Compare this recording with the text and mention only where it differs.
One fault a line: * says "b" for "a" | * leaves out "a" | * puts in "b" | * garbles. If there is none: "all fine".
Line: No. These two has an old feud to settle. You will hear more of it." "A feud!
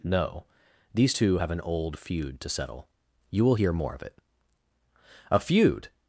* says "have" for "has"